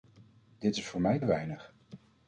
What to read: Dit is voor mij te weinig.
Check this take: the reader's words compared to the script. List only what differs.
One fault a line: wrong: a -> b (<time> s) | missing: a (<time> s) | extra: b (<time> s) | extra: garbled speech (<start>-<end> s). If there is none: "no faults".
missing: te (1.2 s)